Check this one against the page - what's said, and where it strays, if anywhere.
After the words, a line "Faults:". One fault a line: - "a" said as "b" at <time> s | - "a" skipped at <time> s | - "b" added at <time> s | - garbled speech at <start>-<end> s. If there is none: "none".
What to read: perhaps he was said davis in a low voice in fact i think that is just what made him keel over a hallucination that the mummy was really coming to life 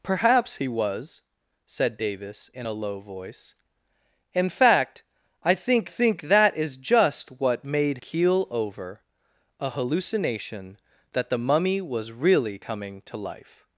perhaps he was said davis in a low voice in fact i think think that is just what made keel over a hallucination that the mummy was really coming to life
Faults:
- "think" added at 5.9 s
- "him" skipped at 8.0 s